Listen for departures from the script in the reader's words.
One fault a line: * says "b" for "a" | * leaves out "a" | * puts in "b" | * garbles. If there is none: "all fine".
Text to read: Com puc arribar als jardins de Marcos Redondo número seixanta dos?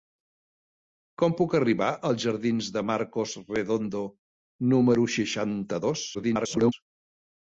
* garbles